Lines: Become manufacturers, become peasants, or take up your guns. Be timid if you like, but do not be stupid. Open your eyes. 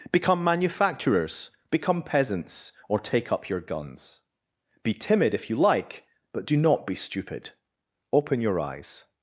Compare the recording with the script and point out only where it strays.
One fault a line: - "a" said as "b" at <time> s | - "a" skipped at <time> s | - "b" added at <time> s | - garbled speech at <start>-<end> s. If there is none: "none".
none